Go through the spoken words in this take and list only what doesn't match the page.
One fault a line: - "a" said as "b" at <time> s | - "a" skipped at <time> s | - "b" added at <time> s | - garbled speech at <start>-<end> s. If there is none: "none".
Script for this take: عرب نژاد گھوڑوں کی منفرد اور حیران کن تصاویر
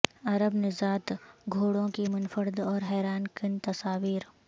none